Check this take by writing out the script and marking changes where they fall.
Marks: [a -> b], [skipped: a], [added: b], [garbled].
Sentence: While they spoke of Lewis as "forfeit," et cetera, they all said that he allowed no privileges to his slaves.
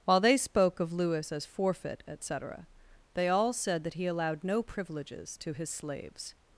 While they spoke of Lewis as "forfeit," et cetera, they all said that he allowed no privileges to his slaves.